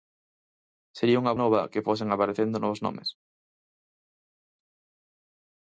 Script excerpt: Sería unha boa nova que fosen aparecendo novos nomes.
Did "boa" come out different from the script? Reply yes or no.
yes